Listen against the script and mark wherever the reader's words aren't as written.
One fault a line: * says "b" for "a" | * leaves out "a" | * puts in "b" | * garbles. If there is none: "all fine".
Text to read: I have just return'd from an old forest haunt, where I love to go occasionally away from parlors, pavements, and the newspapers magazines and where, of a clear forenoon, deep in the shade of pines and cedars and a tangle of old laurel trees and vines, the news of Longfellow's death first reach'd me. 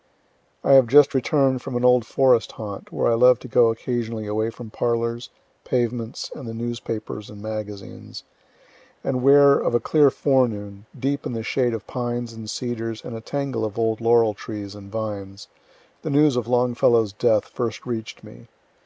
* puts in "and"